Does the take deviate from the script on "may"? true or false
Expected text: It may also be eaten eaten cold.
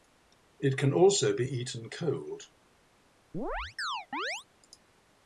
true